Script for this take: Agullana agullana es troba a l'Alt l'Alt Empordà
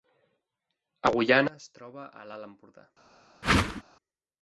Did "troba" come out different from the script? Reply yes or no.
no